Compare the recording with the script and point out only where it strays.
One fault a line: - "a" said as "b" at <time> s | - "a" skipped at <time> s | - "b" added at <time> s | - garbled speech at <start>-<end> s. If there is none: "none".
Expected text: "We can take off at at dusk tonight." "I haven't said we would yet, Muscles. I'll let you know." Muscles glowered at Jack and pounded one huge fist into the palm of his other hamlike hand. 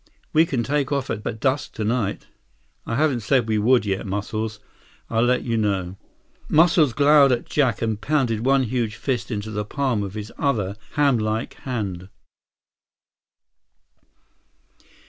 none